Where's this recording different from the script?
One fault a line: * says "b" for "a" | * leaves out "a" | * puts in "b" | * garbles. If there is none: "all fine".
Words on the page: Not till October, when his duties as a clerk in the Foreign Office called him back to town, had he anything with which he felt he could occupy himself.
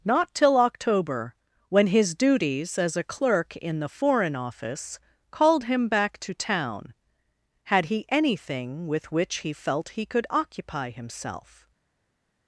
all fine